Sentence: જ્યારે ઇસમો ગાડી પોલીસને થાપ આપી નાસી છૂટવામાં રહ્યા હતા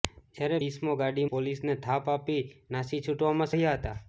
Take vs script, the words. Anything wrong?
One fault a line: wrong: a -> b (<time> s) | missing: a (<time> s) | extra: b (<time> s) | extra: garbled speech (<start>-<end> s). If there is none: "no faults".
no faults